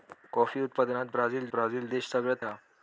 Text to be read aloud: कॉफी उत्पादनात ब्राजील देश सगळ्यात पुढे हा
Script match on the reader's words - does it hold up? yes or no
no